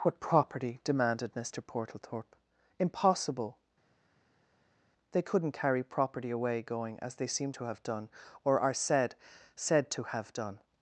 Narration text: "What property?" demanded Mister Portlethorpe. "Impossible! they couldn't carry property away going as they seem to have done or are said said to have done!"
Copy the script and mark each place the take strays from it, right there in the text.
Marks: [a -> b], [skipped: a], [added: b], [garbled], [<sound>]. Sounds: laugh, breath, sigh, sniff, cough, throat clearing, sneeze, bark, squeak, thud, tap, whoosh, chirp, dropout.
"What property?" demanded Mister Portlethorpe. "Impossible! they couldn't carry property away going as they seem to have done or are said said to have done!"